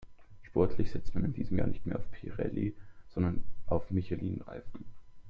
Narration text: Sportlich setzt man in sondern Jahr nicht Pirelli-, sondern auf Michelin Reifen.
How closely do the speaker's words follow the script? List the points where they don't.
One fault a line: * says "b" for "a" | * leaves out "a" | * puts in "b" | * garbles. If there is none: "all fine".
* says "diesem" for "sondern"
* puts in "mehr auf"